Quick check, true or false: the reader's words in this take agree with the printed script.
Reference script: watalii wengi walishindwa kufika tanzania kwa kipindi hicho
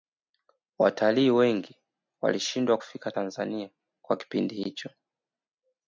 true